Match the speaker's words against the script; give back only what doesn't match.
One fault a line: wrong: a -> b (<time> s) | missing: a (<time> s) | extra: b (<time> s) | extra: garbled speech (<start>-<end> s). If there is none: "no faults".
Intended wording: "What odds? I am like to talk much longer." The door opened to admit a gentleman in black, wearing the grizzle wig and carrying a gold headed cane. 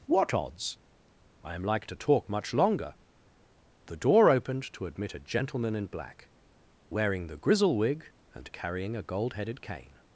no faults